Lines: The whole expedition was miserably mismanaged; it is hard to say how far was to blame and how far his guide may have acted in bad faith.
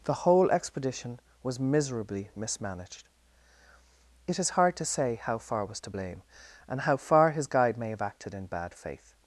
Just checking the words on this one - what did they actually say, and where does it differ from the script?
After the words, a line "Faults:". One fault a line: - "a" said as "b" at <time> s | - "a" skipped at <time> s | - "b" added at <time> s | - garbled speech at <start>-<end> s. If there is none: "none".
The whole expedition was miserably mismanaged; it is hard to say how far was to blame and how far his guide may have acted in bad faith.
Faults:
none